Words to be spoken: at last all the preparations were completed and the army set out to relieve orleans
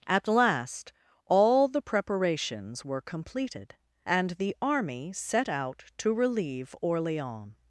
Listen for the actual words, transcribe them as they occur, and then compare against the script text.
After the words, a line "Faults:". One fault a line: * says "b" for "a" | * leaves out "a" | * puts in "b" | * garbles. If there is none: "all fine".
at last all the preparations were completed and the army set out to relieve orleans
Faults:
all fine